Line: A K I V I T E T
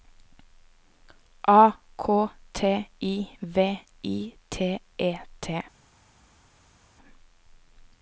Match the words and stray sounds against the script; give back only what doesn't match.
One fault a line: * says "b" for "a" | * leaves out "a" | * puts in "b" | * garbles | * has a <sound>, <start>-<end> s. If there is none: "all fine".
* puts in "T"